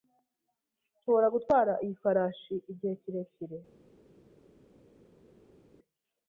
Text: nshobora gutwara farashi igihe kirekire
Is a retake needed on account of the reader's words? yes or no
yes